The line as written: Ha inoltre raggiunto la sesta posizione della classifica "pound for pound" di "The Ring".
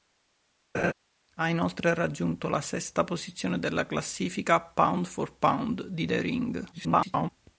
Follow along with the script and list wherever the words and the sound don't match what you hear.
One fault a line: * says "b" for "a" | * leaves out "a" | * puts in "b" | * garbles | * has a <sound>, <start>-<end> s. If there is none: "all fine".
* has a laugh, 0.7-0.9 s
* garbles